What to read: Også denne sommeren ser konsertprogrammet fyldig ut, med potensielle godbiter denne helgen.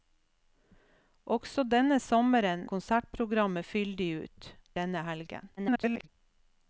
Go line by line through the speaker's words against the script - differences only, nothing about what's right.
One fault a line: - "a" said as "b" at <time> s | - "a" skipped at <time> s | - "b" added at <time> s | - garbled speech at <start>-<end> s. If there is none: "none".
- "ser" skipped at 2.6 s
- "med potensielle godbiter" skipped at 4.5 s
- garbled speech at 5.6-6.1 s